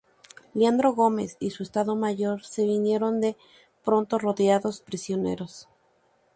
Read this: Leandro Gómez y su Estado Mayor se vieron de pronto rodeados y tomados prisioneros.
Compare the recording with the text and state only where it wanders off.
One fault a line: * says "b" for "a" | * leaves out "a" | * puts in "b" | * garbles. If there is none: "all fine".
* leaves out "y tomados"